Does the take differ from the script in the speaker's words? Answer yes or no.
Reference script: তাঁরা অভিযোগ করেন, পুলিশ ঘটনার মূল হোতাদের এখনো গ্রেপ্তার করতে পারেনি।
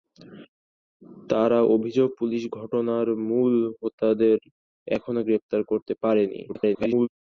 yes